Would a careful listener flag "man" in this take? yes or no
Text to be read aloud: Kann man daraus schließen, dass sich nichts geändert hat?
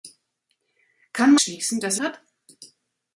yes